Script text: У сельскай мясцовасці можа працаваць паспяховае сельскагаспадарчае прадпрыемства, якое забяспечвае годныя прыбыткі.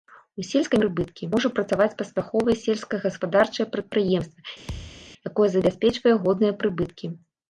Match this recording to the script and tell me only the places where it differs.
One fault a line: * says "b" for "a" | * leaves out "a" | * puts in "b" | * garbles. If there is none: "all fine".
* says "прыбыткі" for "мясцовасці"